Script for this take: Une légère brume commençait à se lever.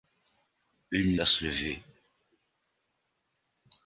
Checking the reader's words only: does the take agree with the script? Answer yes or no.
no